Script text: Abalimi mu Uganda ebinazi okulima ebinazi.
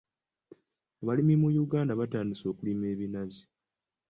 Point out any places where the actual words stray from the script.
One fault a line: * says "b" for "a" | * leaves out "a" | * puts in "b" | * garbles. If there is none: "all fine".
* says "batandise" for "ebinazi"